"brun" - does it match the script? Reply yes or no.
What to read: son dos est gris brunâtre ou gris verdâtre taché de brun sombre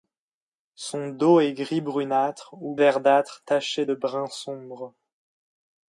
yes